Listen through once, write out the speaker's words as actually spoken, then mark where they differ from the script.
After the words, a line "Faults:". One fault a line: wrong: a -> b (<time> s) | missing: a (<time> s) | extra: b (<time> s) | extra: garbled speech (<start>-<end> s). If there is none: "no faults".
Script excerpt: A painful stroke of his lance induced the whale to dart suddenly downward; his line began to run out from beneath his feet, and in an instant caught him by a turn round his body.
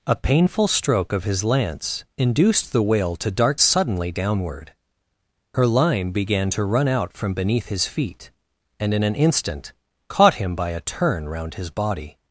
A painful stroke of his lance induced the whale to dart suddenly downward; her line began to run out from beneath his feet, and in an instant caught him by a turn round his body.
Faults:
wrong: his -> her (5.5 s)